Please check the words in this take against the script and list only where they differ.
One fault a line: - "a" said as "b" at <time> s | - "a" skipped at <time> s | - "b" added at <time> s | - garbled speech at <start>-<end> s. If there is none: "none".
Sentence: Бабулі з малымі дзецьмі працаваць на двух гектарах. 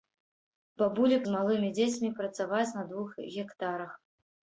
none